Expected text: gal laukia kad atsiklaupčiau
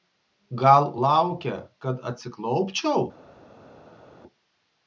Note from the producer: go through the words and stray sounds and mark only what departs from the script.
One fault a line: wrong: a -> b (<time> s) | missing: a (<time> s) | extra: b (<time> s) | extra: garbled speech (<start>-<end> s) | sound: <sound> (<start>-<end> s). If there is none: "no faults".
no faults